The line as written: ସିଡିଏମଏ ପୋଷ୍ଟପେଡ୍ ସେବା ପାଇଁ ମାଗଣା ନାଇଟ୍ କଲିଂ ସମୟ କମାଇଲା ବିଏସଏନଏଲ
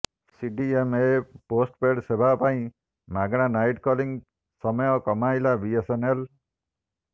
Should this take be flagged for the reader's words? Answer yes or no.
no